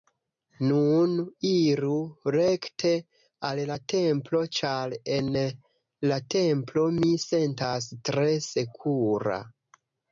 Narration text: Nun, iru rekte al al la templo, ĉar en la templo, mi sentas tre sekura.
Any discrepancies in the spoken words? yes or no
yes